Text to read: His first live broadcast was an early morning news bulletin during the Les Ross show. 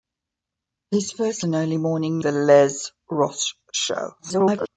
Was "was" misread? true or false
true